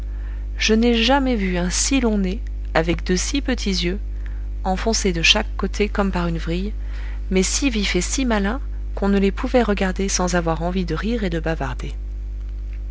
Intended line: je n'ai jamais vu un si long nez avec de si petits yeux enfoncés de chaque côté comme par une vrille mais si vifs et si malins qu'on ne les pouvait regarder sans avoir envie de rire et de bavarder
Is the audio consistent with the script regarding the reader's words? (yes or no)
yes